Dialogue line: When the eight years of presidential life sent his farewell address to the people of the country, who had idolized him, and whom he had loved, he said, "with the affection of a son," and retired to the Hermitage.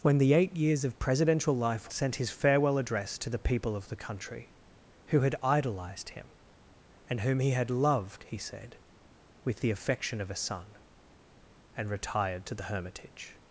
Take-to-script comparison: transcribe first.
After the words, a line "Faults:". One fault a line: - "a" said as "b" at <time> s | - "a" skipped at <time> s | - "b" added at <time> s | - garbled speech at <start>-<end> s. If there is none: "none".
When the eight years of presidential life sent his farewell address to the people of the country, who had idolized him, and whom he had loved, he said, "with the affection of a son," and retired to the Hermitage.
Faults:
none